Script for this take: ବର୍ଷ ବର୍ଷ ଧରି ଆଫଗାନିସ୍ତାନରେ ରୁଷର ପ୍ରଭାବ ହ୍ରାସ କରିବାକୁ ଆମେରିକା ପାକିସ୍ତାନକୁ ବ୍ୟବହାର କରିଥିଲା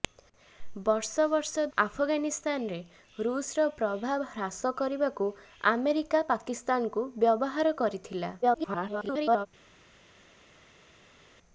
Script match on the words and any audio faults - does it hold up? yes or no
no